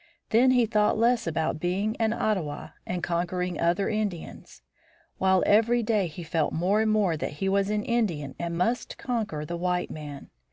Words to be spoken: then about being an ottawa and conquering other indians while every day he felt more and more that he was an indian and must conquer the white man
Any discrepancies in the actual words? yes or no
yes